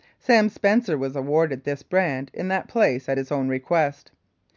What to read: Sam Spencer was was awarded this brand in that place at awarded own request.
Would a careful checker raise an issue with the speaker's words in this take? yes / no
yes